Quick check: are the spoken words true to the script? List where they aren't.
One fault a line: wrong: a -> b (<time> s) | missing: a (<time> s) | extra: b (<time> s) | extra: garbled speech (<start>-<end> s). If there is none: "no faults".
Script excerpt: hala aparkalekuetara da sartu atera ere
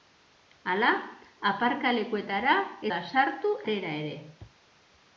no faults